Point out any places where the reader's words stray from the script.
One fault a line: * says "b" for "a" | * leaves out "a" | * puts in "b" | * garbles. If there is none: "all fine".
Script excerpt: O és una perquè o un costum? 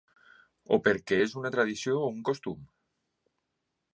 * puts in "perquè"
* says "tradició" for "perquè"